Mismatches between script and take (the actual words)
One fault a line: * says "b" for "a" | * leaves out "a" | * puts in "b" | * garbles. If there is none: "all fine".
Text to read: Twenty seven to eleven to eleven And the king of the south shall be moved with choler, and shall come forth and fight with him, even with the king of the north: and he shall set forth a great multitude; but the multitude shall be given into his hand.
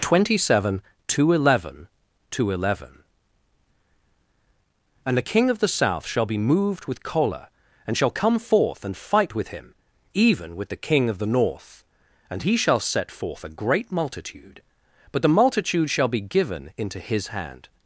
all fine